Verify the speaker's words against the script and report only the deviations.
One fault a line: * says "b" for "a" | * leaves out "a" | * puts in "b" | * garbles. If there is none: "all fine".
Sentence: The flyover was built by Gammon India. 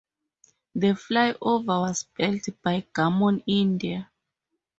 all fine